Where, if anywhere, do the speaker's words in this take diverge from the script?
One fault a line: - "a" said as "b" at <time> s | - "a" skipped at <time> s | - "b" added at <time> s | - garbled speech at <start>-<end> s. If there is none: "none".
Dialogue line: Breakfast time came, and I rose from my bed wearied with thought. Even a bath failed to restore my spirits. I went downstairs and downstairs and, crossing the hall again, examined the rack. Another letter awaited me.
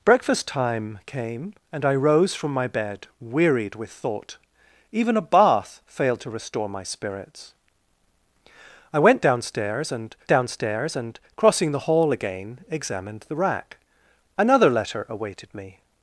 none